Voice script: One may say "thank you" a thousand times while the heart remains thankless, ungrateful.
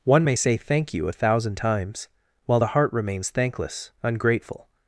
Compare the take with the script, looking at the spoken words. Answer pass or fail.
pass